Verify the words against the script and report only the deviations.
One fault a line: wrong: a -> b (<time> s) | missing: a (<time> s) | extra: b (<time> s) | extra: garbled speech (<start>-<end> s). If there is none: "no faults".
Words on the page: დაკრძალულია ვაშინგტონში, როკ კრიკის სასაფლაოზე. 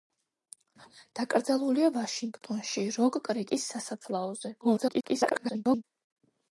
extra: garbled speech (4.6-5.8 s)